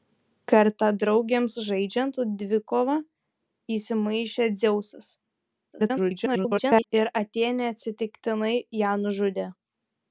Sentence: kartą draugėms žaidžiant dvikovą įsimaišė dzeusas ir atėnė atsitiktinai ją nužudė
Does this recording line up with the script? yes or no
no